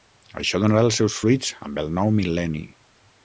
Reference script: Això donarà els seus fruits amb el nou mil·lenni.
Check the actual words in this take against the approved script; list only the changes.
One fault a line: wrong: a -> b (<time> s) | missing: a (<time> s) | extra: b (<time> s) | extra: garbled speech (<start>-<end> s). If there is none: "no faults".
no faults